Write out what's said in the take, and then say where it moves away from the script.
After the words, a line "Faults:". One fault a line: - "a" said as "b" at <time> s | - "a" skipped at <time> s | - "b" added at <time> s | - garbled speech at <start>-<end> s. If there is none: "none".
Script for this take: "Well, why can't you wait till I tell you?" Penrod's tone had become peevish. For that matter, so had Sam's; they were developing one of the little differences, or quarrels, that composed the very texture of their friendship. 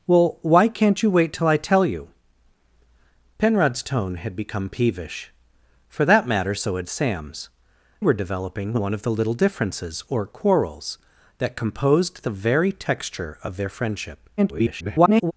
"Well, why can't you wait till I tell you?" Penrod's tone had become peevish. For that matter, so had Sam's; were developing one of the little differences, or quarrels, that composed the very texture of their friendship. [garbled]
Faults:
- "they" skipped at 7.5 s
- garbled speech at 14.4-15.3 s